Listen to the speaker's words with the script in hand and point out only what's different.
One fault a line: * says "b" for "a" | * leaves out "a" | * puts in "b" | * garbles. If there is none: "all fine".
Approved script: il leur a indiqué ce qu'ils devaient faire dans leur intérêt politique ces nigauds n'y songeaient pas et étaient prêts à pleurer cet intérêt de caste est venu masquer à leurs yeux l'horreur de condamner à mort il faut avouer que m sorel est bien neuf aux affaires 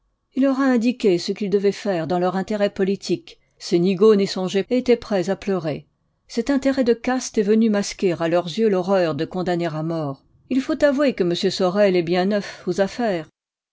* leaves out "pas"